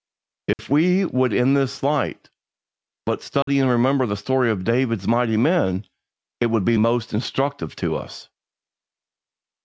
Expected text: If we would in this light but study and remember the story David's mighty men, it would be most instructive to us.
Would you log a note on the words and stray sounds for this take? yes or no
yes